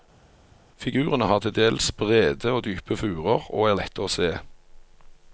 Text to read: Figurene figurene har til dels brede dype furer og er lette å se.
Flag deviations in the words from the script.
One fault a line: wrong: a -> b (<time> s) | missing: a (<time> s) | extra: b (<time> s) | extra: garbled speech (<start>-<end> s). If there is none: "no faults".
missing: figurene (1.3 s)
extra: og (2.5 s)